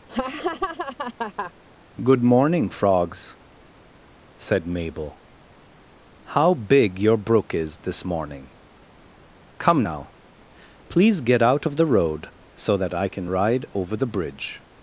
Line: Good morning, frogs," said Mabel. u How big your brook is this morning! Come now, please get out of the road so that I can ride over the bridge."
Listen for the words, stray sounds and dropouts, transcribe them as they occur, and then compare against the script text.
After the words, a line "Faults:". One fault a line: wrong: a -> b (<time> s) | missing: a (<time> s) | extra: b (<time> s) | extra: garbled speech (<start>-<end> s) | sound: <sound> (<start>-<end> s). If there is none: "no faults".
Good morning, frogs," said Mabel. How big your brook is this morning! Come now, please get out of the road so that I can ride over the bridge."
Faults:
sound: laugh (0.1-1.5 s)
missing: u (5.2 s)